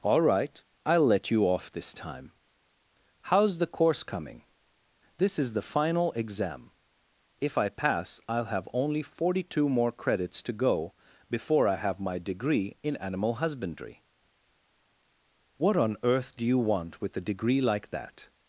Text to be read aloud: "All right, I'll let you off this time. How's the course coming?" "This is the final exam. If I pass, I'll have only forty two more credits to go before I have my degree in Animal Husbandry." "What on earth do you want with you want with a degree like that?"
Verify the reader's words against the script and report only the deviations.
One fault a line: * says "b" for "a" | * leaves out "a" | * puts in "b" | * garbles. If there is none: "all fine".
* leaves out "you want with"